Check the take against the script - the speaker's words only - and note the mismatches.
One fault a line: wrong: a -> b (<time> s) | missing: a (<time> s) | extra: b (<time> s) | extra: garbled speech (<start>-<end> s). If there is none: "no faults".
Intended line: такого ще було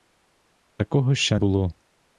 no faults